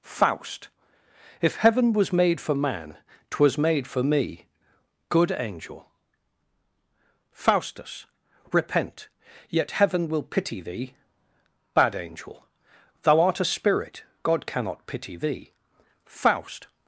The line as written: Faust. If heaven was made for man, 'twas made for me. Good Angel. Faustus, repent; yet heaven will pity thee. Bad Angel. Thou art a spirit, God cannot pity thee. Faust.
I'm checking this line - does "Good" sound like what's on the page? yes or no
yes